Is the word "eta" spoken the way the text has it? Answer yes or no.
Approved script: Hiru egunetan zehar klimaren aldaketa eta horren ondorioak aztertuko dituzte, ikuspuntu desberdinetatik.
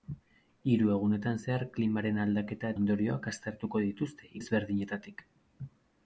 no